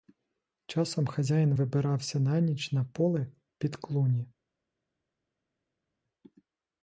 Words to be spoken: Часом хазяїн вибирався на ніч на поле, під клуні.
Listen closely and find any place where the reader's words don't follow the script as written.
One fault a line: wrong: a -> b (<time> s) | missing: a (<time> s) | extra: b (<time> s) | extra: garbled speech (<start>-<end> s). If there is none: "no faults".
no faults